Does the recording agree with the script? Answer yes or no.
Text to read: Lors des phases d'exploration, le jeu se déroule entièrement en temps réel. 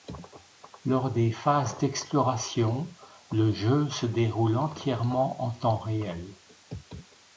yes